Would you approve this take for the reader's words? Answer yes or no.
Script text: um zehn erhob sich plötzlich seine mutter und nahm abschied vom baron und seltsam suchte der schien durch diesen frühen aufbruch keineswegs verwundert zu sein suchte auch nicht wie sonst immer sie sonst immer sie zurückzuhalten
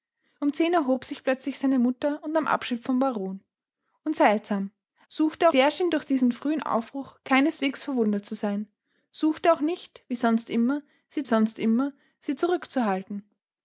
yes